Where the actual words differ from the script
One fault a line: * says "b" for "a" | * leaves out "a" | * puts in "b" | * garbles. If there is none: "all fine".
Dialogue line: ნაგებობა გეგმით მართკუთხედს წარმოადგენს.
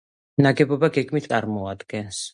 * leaves out "მართკუთხედს"